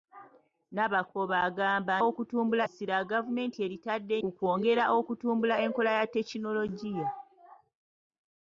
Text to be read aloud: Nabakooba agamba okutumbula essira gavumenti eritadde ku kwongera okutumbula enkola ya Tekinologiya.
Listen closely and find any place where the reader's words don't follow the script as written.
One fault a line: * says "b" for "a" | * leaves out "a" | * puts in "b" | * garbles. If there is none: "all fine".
all fine